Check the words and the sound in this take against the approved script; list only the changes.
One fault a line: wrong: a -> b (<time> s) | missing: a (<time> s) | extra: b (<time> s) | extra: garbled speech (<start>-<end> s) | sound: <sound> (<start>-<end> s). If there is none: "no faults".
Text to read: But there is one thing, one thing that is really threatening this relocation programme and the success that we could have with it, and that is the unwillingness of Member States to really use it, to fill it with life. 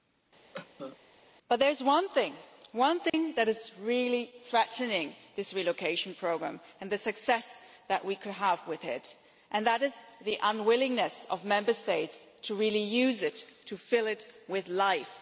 sound: cough (0.5-1.0 s)
sound: dropout (3.1-3.1 s)